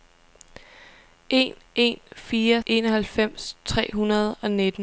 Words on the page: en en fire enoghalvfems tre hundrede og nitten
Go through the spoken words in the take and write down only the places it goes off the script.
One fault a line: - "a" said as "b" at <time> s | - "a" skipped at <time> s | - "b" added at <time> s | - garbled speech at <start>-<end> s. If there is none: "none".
none